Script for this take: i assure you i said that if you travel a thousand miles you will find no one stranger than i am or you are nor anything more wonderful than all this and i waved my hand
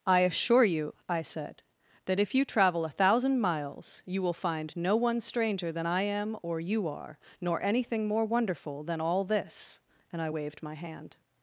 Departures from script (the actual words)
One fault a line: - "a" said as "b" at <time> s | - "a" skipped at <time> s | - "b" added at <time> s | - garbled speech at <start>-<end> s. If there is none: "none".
none